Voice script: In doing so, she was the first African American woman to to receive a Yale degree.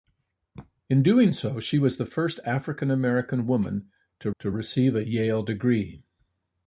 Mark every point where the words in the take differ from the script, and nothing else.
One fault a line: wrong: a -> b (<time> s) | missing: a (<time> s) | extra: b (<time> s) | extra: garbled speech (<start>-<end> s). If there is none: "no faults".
no faults